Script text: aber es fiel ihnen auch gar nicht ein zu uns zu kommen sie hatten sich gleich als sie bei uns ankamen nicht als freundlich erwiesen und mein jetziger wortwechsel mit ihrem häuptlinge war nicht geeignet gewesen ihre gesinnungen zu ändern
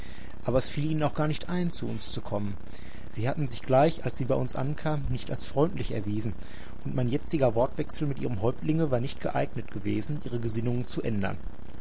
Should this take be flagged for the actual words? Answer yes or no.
no